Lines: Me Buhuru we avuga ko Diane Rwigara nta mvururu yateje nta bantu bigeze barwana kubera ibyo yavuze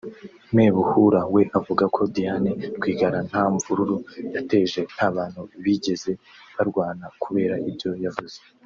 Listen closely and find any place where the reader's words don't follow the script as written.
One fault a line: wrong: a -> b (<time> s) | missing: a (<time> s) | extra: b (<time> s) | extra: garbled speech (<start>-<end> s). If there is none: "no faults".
no faults